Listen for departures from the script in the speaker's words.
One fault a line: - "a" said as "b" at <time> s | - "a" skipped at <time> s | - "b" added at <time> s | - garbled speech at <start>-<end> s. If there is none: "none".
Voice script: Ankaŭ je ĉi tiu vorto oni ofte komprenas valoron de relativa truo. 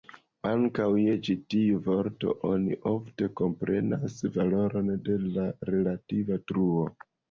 - "la" added at 5.3 s